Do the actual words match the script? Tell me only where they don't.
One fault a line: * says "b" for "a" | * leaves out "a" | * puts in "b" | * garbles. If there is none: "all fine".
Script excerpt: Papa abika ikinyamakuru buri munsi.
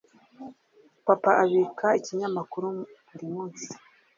all fine